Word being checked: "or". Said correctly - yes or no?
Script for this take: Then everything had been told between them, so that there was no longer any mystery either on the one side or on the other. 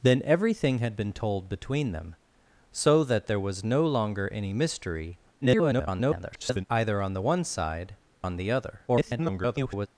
no